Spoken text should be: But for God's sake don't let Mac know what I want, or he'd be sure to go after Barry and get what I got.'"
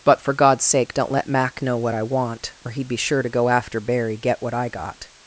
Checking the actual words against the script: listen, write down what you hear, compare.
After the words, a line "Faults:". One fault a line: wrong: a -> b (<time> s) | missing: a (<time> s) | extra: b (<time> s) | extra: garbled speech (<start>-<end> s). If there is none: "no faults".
But for God's sake don't let Mac know what I want, or he'd be sure to go after Barry get what I got.'"
Faults:
missing: and (4.2 s)